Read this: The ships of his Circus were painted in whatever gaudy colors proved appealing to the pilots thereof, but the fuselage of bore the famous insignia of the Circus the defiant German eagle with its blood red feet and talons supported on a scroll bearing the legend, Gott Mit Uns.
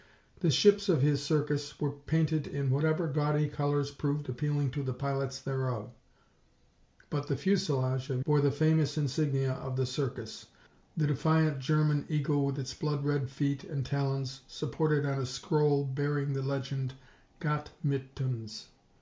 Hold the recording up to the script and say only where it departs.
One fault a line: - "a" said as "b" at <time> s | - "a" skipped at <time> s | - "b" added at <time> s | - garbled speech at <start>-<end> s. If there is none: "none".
none